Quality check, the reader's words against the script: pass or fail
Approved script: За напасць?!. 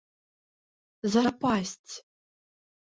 pass